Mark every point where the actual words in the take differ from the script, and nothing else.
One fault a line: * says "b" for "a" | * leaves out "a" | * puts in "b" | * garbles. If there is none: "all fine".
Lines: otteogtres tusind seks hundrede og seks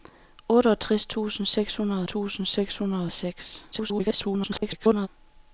* puts in "tusind seks hundrede"
* garbles